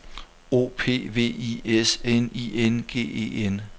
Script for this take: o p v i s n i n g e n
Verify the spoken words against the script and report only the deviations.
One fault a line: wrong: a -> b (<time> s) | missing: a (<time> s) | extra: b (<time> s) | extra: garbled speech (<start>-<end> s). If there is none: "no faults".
no faults